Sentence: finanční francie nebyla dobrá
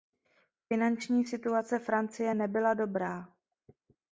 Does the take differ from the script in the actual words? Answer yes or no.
yes